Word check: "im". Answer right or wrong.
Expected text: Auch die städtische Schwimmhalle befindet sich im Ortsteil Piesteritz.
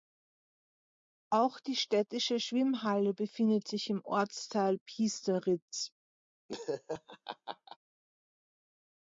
right